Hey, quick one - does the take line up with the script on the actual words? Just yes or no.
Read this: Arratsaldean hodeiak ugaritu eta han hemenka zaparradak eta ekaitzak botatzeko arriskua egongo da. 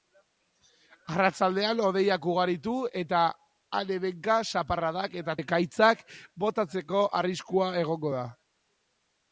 yes